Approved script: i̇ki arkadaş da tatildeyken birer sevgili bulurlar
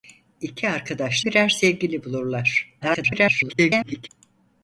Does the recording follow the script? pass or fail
fail